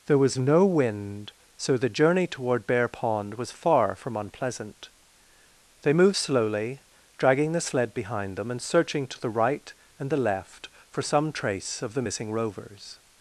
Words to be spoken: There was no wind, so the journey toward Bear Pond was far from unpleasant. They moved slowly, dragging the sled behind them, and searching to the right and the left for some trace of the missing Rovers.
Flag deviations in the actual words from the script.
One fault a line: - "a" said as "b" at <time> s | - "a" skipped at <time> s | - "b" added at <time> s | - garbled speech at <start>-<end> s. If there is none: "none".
none